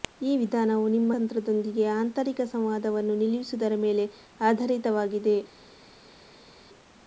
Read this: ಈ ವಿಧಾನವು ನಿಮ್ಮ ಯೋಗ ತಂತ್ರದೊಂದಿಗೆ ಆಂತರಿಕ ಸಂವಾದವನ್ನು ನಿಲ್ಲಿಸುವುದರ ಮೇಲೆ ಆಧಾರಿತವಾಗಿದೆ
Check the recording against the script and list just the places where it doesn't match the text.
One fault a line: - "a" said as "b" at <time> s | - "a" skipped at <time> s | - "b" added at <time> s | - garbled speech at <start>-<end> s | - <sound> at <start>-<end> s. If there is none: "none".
- "ಯೋಗ" skipped at 1.1 s